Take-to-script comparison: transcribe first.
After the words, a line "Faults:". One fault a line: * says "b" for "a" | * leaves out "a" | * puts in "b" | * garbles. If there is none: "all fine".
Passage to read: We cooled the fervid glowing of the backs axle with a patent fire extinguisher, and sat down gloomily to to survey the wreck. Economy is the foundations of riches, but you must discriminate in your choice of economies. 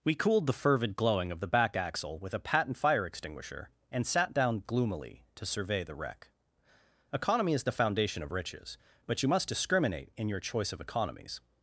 We cooled the fervid glowing of the back axle with a patent fire extinguisher, and sat down gloomily to survey the wreck. Economy is the foundation of riches, but you must discriminate in your choice of economies.
Faults:
* says "back" for "backs"
* leaves out "to"
* says "foundation" for "foundations"